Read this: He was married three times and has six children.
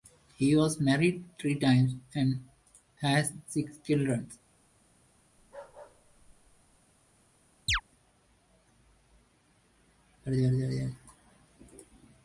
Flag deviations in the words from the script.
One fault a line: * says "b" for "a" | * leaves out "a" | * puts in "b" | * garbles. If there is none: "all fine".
all fine